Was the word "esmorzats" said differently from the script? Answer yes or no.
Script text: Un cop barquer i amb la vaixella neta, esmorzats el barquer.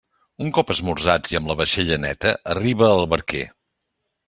yes